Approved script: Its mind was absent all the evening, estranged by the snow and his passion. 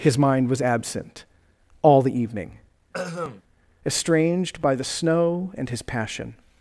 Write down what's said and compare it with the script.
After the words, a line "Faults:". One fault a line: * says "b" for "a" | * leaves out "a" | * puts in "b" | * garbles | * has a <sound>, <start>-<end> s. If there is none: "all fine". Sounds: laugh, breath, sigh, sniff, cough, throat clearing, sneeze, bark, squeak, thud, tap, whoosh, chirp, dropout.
His mind was absent all the evening, estranged by the snow and his passion.
Faults:
* says "His" for "Its"
* has a throat clearing, 2.9-3.4 s